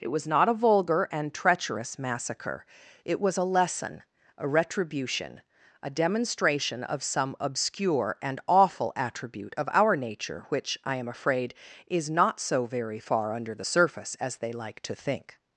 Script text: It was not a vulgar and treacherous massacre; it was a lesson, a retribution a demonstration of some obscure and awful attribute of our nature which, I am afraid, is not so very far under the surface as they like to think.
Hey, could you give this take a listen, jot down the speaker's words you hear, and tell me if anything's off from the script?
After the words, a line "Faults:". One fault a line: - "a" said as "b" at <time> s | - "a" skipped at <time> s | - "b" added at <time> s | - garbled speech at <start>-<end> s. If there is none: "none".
It was not a vulgar and treacherous massacre; it was a lesson, a retribution a demonstration of some obscure and awful attribute of our nature which, I am afraid, is not so very far under the surface as they like to think.
Faults:
none